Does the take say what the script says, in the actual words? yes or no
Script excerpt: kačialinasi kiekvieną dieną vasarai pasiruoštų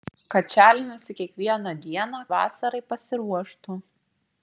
yes